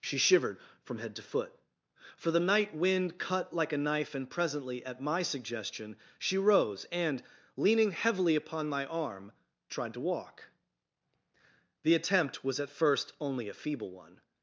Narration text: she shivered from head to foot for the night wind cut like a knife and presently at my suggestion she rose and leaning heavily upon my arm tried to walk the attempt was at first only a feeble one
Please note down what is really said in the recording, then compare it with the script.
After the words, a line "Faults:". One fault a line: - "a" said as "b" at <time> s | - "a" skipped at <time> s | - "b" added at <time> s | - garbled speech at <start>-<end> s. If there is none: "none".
she shivered from head to foot for the night wind cut like a knife and presently at my suggestion she rose and leaning heavily upon my arm tried to walk the attempt was at first only a feeble one
Faults:
none